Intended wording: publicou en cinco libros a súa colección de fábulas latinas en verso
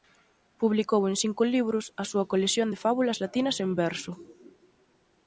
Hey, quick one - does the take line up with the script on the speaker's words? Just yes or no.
yes